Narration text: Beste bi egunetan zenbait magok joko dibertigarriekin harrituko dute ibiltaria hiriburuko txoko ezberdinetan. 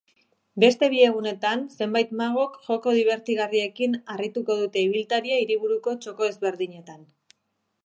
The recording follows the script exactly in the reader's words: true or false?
true